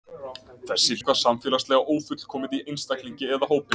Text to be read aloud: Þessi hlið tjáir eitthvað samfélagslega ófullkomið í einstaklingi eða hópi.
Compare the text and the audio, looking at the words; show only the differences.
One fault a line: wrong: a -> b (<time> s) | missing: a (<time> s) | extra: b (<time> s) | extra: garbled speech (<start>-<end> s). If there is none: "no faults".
missing: hlið tjáir (1.0 s)